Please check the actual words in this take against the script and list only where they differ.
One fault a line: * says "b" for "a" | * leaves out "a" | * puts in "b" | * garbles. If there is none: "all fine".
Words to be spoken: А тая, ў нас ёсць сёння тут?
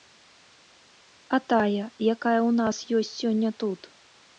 * puts in "якая"